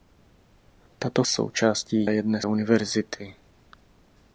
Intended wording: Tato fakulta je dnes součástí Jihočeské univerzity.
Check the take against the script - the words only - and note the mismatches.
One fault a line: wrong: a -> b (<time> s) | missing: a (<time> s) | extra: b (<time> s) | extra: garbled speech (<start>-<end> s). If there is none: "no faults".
wrong: fakulta -> součástí (1.3 s)
missing: součástí Jihočeské (2.5 s)